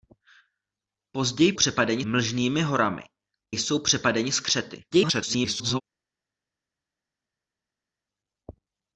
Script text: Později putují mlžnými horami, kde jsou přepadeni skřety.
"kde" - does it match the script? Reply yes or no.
no